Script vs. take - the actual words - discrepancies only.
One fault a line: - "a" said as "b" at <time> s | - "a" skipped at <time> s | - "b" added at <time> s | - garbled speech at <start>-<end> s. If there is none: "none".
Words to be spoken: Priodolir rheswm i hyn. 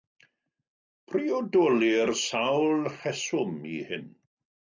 - "sawl" added at 2.2 s